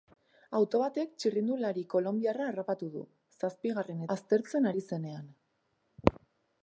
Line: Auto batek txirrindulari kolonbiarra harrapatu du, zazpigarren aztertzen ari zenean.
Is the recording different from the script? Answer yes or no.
no